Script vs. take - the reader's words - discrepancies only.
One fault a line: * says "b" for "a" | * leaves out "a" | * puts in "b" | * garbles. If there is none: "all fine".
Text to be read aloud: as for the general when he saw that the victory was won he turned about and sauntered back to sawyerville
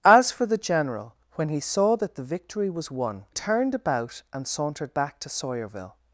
* leaves out "he"